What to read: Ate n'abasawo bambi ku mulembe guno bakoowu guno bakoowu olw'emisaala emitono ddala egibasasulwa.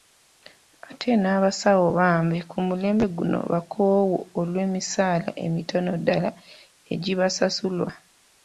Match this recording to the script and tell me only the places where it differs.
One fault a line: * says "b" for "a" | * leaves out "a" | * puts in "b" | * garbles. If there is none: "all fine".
* leaves out "guno bakoowu"